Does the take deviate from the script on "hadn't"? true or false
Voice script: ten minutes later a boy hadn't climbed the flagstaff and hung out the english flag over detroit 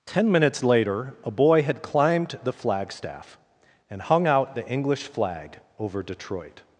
true